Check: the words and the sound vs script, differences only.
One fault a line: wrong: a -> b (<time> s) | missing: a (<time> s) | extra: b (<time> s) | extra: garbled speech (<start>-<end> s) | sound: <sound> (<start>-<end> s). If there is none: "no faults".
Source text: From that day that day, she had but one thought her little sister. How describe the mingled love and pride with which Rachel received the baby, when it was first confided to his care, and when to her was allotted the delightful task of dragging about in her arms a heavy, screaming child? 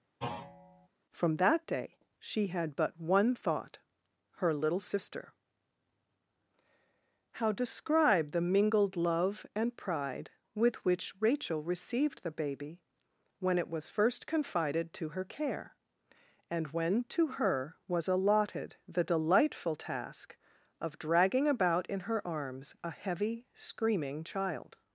sound: thud (0.2-0.9 s)
missing: that day (2.0 s)
wrong: his -> her (15.1 s)